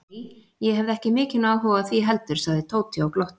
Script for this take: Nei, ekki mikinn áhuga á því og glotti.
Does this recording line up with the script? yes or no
no